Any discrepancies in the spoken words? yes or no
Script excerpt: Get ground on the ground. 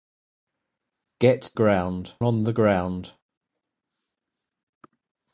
no